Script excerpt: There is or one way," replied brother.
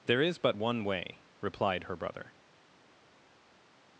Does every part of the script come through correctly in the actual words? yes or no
no